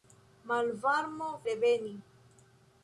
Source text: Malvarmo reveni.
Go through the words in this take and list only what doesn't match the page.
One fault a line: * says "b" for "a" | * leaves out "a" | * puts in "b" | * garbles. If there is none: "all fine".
all fine